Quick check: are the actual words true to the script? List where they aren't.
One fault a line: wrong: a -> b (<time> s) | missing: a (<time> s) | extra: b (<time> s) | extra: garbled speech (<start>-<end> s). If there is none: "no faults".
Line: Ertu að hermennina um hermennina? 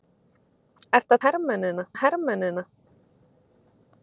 no faults